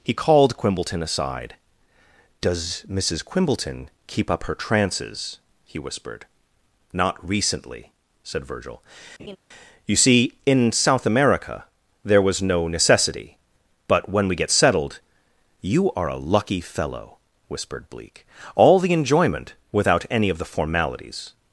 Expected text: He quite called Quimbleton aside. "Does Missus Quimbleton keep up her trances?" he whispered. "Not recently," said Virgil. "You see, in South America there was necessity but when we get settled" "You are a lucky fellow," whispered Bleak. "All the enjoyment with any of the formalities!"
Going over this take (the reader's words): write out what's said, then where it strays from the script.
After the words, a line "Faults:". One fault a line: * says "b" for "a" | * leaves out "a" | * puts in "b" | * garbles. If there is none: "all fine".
He called Quimbleton aside. "Does Missus Quimbleton keep up her trances?" he whispered. "Not recently," said Virgil. "You see, in South America there was no necessity but when we get settled" "You are a lucky fellow," whispered Bleak. "All the enjoyment without any of the formalities!"
Faults:
* leaves out "quite"
* puts in "no"
* says "without" for "with"